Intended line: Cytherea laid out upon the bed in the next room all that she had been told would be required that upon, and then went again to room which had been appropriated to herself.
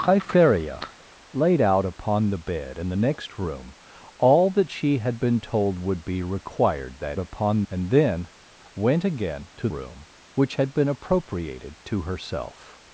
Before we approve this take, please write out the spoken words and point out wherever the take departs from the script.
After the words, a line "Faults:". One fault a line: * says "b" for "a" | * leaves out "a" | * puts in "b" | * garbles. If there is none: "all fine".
Cytherea laid out upon the bed in the next room all that she had been told would be required that upon, and then went again to room which had been appropriated to herself.
Faults:
all fine